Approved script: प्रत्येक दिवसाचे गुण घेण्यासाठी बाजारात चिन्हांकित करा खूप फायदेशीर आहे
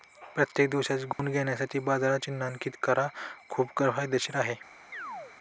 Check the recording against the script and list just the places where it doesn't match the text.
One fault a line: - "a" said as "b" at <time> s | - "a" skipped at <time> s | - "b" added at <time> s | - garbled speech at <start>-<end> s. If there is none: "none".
none